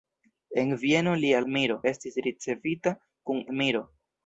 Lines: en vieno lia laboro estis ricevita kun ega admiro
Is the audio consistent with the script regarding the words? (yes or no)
no